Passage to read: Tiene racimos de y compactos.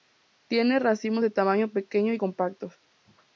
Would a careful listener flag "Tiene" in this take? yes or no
no